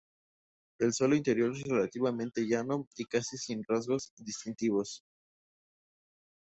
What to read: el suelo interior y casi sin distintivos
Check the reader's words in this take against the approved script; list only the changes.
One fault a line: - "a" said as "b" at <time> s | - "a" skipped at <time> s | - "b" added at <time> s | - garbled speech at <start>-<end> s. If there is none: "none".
- "es relativamente llano" added at 1.5 s
- "rasgos" added at 3.7 s